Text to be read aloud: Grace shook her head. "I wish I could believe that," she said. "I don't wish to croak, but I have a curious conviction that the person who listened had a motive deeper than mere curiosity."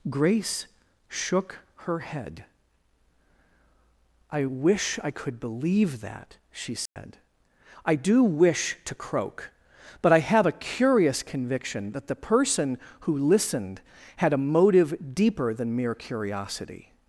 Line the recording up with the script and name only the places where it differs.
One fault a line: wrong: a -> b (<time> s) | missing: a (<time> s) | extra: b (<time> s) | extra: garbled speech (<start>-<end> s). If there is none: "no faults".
wrong: don't -> do (7.9 s)